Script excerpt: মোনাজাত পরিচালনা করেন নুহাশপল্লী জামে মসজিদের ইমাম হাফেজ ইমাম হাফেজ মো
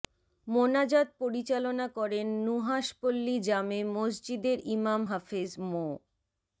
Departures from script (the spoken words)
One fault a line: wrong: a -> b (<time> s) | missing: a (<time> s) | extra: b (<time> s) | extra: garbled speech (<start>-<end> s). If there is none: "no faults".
missing: ইমাম হাফেজ (5.5 s)